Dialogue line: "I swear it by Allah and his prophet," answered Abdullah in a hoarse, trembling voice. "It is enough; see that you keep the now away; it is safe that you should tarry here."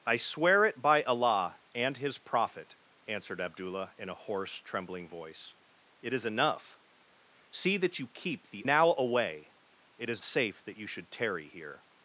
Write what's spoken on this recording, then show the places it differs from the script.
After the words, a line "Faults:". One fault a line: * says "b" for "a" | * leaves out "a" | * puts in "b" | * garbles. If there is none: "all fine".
"I swear it by Allah and his prophet," answered Abdullah in a hoarse, trembling voice. "It is enough; see that you keep the now away; it is safe that you should tarry here."
Faults:
all fine